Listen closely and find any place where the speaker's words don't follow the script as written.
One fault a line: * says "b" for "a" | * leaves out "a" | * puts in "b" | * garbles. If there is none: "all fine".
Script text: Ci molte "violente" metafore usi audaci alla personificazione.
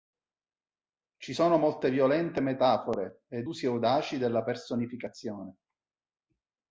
* puts in "sono"
* puts in "ed"
* says "della" for "alla"